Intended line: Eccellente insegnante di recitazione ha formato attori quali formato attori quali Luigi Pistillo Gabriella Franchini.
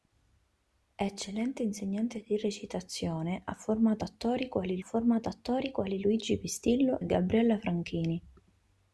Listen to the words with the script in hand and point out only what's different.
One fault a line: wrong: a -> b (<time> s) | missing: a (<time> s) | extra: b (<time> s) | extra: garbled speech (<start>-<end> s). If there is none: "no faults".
no faults